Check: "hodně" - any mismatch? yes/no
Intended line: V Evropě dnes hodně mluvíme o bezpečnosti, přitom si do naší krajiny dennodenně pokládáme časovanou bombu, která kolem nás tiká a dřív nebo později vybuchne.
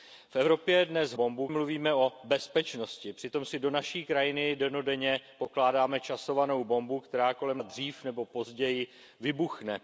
yes